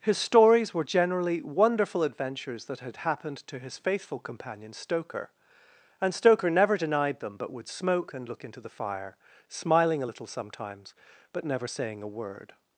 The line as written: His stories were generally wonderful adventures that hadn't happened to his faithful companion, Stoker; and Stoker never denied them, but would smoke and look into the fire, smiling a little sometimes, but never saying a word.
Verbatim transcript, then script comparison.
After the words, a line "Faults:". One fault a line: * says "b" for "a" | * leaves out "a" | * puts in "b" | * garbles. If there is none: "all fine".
His stories were generally wonderful adventures that had happened to his faithful companion, Stoker; and Stoker never denied them, but would smoke and look into the fire, smiling a little sometimes, but never saying a word.
Faults:
* says "had" for "hadn't"